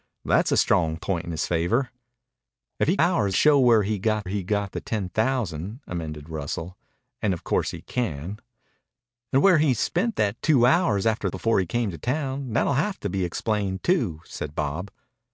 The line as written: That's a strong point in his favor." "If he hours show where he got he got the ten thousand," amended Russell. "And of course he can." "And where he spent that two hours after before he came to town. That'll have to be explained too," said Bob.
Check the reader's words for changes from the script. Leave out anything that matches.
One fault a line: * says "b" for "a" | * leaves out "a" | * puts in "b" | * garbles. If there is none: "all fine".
all fine